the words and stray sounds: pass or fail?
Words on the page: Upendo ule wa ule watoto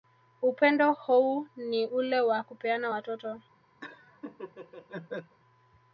fail